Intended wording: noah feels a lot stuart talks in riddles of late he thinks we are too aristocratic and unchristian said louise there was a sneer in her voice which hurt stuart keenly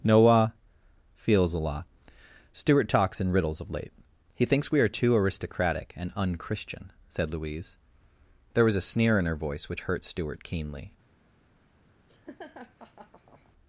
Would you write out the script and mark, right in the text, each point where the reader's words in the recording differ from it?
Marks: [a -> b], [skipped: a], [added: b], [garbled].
noah feels a lot stuart talks in riddles of late he thinks we are too aristocratic and unchristian said louise there was a sneer in her voice which hurt stuart keenly